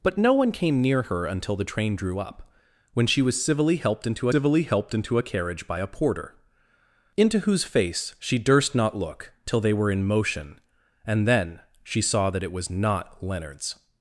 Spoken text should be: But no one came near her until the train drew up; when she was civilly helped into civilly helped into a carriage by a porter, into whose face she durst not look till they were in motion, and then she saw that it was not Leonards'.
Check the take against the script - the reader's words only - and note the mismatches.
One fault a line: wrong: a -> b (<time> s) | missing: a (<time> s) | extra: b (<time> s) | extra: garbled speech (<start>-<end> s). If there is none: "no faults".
no faults